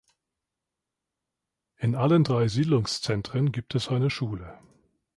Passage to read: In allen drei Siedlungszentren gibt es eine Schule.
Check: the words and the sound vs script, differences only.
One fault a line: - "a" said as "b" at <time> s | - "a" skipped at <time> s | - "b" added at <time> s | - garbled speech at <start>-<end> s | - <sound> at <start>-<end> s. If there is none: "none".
none